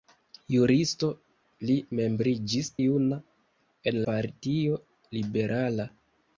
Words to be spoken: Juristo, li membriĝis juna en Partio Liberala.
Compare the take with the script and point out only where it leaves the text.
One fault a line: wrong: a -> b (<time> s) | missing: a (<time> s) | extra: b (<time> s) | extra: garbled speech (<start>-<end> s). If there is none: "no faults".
no faults